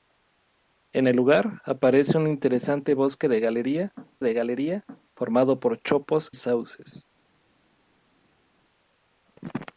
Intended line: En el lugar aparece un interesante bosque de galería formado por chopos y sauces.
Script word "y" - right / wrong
wrong